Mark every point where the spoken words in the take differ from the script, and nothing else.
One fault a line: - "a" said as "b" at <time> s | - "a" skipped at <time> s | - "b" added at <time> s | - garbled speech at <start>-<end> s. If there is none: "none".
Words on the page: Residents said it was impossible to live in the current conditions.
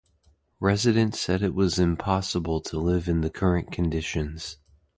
none